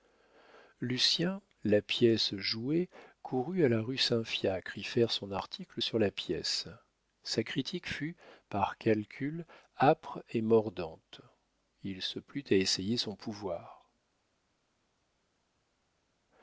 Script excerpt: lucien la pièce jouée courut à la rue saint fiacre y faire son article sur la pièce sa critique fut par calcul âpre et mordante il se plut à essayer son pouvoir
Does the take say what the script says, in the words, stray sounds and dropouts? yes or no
yes